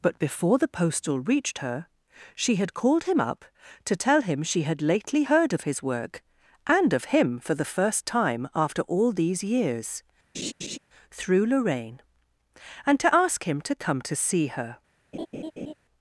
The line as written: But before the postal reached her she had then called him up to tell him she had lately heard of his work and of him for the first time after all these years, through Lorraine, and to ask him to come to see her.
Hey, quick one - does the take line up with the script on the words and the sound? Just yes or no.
no